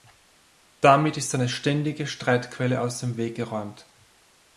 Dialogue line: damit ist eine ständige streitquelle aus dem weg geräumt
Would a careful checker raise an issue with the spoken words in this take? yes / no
no